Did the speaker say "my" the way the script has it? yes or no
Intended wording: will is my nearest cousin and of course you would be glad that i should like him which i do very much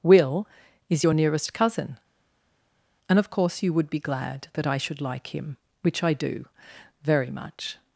no